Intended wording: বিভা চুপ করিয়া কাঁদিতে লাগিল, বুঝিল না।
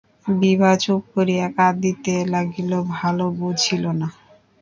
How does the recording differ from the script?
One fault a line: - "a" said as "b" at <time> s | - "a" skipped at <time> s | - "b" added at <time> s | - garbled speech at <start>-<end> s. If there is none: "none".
- "ভালো" added at 2.9 s